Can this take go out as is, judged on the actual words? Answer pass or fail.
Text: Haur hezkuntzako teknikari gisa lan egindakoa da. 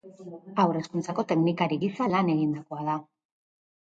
pass